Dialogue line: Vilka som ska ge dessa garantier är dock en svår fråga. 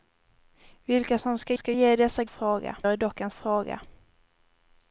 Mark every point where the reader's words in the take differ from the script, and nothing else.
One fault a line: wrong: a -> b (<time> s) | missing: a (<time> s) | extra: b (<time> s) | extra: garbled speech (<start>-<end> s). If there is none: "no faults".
extra: ska (1.5 s)
wrong: garantier -> fråga (2.3 s)
missing: svår (3.3 s)